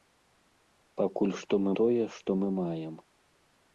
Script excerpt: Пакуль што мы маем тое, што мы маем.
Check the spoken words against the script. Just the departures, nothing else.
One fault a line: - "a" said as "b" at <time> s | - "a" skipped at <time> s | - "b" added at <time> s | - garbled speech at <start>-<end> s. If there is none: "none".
- "маем" skipped at 1.7 s